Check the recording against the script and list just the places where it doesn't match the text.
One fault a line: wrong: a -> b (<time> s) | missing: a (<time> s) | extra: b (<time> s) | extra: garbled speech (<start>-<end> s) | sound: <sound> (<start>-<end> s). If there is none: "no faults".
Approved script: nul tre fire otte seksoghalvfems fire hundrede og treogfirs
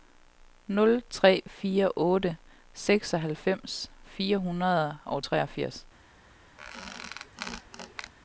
sound: squeak (6.6-8.1 s)